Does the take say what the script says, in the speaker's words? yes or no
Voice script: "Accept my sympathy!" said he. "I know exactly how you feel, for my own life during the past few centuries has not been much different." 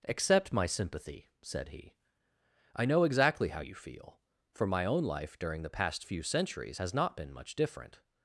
yes